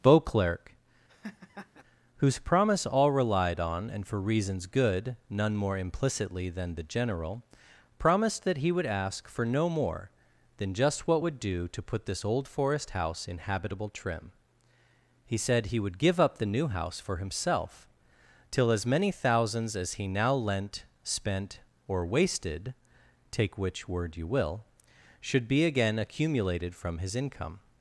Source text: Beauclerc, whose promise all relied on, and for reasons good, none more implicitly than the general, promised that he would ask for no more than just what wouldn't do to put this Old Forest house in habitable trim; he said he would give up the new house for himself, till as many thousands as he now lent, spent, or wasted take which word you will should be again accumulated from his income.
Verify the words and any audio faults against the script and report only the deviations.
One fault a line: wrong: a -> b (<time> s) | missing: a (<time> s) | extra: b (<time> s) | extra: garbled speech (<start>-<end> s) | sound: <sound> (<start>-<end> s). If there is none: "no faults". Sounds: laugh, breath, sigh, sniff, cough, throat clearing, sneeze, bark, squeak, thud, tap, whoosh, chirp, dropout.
sound: laugh (1.1-1.8 s)
wrong: wouldn't -> would (11.2 s)